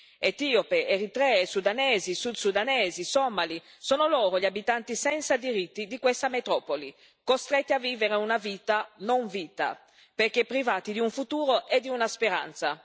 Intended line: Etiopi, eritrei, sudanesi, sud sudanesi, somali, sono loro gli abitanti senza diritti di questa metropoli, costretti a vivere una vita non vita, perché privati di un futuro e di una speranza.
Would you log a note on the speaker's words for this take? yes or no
no